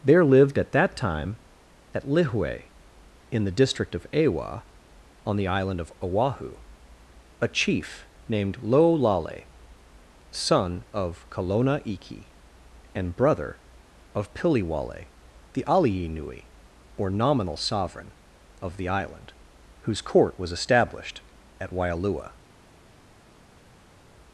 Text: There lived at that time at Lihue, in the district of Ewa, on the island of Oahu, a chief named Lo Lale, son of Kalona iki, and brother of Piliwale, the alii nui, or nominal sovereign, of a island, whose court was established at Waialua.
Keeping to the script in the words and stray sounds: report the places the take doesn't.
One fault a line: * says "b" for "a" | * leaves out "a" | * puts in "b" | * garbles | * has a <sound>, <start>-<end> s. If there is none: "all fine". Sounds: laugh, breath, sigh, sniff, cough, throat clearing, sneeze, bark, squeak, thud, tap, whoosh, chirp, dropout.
* says "the" for "a"